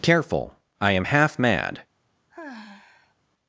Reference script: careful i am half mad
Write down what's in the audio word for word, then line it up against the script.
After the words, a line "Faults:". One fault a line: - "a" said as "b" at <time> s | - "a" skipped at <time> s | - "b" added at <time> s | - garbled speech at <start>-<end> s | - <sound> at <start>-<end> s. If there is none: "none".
careful i am half mad
Faults:
- sigh at 2.3-3.2 s